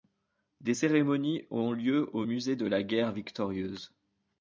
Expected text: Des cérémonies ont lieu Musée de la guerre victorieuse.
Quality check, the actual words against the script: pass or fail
fail